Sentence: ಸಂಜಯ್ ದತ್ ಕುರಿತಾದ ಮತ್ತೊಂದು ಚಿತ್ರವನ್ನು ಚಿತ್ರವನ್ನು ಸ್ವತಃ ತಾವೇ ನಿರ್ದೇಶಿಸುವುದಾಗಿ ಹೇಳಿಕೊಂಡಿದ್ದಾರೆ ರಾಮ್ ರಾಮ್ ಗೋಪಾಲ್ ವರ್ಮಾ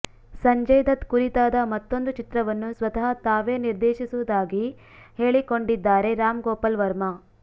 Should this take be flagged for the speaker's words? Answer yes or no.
yes